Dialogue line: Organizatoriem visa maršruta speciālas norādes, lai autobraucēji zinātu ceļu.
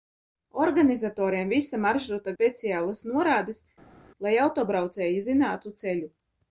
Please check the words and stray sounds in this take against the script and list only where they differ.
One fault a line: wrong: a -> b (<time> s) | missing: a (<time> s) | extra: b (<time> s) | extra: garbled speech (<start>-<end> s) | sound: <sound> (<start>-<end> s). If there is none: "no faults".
no faults